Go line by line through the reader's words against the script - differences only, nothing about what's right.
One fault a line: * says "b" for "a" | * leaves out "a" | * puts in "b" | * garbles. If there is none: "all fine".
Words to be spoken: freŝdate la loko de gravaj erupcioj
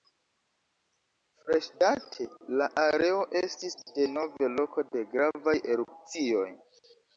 * puts in "areo estis denove"